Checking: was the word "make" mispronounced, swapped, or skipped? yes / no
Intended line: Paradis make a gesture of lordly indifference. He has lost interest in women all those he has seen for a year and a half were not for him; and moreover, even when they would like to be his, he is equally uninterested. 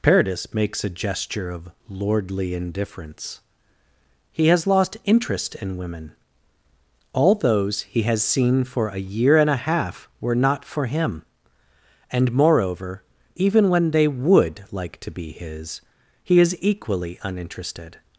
yes